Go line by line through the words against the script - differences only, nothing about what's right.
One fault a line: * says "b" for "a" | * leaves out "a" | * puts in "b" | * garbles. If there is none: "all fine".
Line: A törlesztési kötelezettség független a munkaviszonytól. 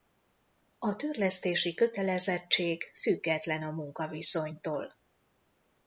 all fine